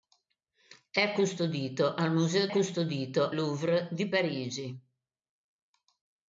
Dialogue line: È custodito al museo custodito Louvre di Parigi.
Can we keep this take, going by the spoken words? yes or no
yes